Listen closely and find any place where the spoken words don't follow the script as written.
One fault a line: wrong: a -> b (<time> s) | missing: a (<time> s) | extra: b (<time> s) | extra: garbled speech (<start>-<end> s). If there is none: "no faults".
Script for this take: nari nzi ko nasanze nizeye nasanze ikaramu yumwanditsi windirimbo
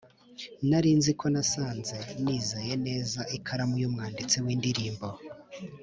wrong: nasanze -> neza (2.9 s)